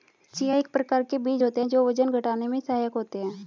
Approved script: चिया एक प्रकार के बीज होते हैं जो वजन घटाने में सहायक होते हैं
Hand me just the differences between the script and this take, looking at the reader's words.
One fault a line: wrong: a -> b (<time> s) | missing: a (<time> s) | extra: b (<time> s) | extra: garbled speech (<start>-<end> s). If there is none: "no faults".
no faults